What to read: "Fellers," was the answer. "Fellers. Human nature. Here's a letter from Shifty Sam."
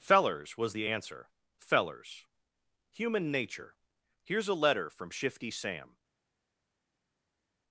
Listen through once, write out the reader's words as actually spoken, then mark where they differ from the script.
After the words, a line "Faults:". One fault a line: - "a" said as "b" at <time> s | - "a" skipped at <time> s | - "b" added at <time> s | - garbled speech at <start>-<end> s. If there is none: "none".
"Fellers," was the answer. "Fellers. Human nature. Here's a letter from Shifty Sam."
Faults:
none